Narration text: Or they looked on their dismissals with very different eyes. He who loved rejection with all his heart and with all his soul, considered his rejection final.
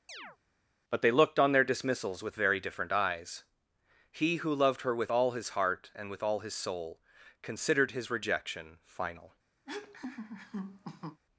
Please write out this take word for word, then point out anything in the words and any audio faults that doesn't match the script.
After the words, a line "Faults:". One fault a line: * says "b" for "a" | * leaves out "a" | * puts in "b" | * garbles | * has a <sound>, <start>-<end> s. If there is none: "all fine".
But they looked on their dismissals with very different eyes. He who loved her with all his heart and with all his soul, considered his rejection final.
Faults:
* has a chirp, 0.1-0.4 s
* says "But" for "Or"
* says "her" for "rejection"
* has a laugh, 9.7-11.2 s